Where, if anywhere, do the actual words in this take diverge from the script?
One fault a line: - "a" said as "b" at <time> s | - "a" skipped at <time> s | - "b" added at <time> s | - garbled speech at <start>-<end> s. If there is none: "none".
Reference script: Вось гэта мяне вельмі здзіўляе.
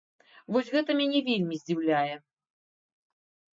none